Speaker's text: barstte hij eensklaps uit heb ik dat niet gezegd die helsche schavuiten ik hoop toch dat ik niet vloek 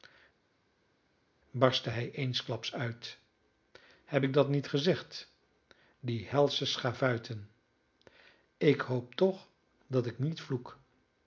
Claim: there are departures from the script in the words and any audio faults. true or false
false